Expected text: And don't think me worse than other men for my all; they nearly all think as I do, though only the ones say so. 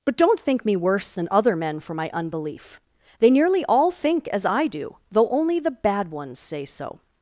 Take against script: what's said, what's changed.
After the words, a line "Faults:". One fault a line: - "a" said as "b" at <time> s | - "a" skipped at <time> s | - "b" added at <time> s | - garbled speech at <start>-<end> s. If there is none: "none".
But don't think me worse than other men for my unbelief; they nearly all think as I do, though only the bad ones say so.
Faults:
- "And" said as "But" at 0.1 s
- "all" said as "unbelief" at 2.1 s
- "bad" added at 5.7 s